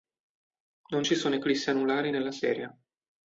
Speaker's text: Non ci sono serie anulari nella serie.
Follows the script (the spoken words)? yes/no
no